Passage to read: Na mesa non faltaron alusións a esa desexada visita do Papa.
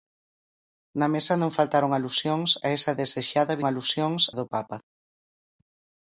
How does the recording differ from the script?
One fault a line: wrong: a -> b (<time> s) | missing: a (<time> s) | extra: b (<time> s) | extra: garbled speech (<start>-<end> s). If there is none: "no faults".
wrong: visita -> alusións (3.7 s)